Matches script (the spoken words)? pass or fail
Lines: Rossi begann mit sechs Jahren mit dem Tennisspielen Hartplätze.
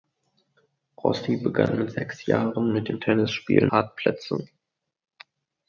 pass